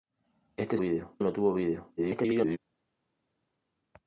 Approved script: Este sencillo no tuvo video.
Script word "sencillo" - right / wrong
wrong